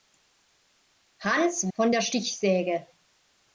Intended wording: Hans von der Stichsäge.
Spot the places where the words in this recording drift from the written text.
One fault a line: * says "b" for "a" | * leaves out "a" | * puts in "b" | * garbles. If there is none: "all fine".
all fine